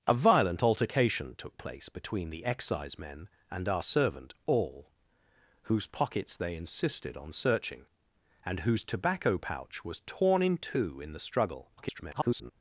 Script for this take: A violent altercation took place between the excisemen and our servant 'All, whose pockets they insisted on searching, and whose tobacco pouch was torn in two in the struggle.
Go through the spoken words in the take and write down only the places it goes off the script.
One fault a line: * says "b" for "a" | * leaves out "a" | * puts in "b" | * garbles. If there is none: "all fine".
* garbles